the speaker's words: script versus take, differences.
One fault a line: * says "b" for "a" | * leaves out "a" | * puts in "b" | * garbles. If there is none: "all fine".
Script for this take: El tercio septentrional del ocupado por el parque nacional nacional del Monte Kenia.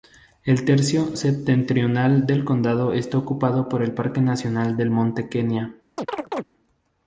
* puts in "condado está"
* leaves out "nacional"